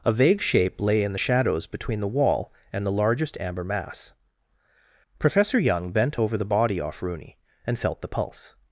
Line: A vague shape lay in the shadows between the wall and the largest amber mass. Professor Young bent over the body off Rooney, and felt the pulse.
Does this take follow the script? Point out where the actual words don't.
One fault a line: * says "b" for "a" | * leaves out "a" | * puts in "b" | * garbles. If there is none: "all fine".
all fine